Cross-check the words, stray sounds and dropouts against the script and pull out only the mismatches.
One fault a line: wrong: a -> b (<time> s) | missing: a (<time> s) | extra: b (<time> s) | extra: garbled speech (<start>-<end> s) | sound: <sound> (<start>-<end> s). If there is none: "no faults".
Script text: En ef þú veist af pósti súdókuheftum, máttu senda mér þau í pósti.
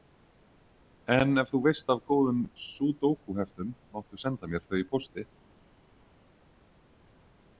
wrong: pósti -> góðum (2.1 s)